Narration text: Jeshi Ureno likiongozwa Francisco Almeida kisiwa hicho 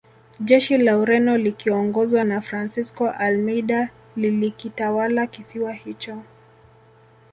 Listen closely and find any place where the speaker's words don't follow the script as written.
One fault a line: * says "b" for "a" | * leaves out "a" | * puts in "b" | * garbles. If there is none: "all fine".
* puts in "la"
* puts in "na"
* puts in "lilikitawala"